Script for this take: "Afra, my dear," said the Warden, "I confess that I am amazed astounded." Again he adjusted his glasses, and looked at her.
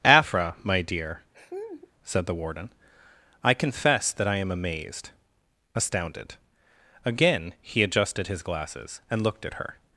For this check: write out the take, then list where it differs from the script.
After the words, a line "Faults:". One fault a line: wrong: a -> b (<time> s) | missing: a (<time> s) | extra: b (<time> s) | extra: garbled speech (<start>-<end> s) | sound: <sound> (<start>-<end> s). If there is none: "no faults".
"Afra, my dear," said the Warden, "I confess that I am amazed astounded." Again he adjusted his glasses, and looked at her.
Faults:
sound: laugh (1.3-1.9 s)